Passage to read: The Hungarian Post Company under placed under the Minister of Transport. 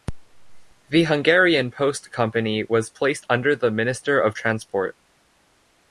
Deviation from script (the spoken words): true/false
true